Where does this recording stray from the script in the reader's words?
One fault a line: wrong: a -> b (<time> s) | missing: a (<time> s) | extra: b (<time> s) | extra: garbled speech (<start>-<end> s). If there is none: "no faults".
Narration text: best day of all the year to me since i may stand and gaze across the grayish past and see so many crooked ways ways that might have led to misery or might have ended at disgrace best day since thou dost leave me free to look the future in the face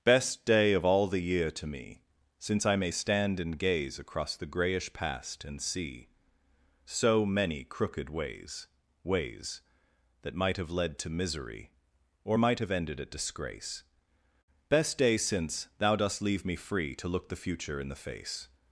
no faults